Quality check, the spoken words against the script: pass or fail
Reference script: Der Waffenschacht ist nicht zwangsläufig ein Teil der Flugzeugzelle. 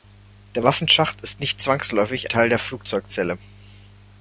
fail